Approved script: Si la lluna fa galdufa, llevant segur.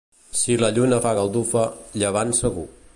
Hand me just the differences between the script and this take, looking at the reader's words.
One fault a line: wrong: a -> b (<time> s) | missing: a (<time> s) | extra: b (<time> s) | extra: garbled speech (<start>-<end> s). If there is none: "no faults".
no faults